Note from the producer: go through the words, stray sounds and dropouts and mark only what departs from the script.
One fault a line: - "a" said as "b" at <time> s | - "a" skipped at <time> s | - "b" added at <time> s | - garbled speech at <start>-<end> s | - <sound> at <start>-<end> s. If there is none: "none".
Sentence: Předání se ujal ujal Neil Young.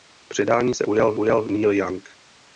none